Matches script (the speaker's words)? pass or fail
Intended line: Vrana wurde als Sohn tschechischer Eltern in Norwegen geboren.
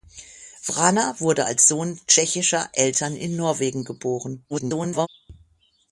fail